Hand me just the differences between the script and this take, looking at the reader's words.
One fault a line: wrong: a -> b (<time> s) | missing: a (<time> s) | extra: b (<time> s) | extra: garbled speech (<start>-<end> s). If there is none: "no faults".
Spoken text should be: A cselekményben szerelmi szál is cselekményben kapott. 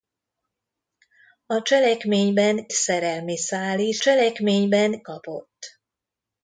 no faults